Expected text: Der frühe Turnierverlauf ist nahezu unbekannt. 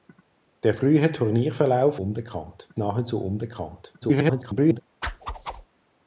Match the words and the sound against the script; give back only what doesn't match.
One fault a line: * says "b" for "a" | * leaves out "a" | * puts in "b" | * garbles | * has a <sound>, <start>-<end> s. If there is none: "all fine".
* says "unbekannt" for "ist"
* garbles
* has a whoosh, 5.0-5.7 s